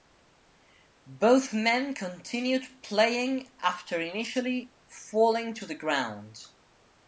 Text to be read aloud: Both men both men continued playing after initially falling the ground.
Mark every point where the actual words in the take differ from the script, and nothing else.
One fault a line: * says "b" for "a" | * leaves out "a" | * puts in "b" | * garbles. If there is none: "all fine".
* leaves out "both men"
* puts in "to"